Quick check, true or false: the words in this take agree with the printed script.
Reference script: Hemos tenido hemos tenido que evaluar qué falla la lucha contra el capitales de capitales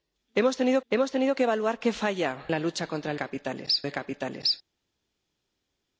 true